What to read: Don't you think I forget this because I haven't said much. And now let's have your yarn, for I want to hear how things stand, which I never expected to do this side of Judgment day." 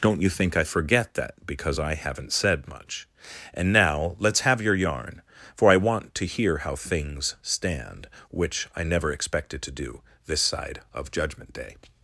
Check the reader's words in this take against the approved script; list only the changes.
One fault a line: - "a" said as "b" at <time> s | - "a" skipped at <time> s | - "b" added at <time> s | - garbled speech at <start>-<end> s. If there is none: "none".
- "this" said as "that" at 1.1 s